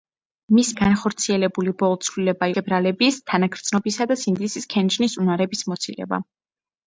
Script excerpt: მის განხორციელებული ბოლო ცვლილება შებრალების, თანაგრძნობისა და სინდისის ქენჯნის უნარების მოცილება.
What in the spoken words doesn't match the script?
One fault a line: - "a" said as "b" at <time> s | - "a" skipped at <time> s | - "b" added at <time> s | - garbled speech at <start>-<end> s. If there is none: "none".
none